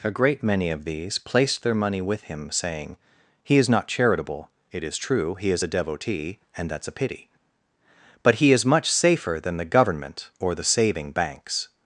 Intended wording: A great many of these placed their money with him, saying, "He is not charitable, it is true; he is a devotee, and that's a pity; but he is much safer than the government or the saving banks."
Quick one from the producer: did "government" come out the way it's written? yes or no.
yes